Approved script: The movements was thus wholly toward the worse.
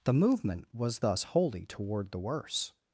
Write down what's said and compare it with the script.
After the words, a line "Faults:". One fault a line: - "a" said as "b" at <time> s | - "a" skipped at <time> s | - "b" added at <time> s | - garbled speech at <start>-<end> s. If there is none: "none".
The movement was thus wholly toward the worse.
Faults:
- "movements" said as "movement" at 0.1 s